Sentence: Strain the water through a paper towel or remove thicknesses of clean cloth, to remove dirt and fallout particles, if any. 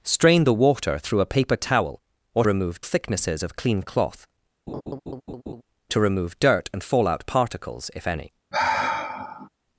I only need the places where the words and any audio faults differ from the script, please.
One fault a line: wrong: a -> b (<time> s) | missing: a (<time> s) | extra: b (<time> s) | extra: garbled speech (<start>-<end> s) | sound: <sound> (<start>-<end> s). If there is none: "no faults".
sound: laugh (4.7-5.6 s)
sound: sigh (8.5-9.5 s)